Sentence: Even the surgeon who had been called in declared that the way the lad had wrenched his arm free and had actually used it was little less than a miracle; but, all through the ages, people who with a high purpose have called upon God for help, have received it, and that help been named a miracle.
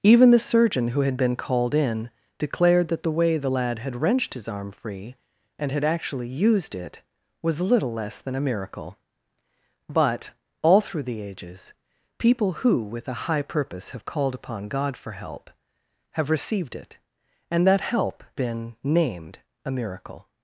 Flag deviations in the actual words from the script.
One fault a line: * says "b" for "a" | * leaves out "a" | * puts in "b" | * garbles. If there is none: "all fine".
all fine